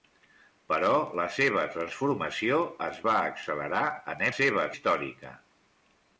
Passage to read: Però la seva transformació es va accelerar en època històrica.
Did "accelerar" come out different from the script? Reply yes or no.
no